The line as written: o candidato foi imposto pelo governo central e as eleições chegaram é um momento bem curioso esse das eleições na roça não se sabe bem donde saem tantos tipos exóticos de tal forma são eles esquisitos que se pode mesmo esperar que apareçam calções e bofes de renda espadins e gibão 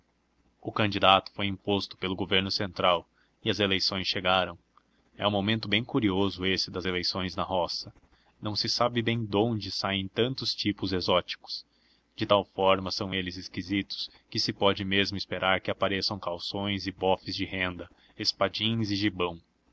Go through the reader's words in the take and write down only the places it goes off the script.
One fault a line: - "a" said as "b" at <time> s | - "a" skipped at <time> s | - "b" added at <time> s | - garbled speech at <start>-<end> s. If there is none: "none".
none